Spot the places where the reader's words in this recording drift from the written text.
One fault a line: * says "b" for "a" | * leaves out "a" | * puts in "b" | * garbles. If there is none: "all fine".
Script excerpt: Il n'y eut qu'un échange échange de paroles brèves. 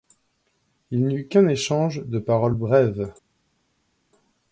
* leaves out "échange"